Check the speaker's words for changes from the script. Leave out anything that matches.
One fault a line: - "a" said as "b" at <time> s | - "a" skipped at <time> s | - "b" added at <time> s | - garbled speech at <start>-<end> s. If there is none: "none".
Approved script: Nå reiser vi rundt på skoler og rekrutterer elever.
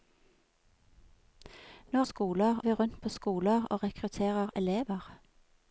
- "reiser" said as "skoler" at 2.0 s